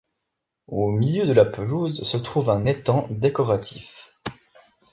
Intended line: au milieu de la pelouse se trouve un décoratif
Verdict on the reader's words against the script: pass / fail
fail